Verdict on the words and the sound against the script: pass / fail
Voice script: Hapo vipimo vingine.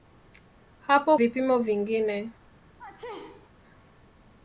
fail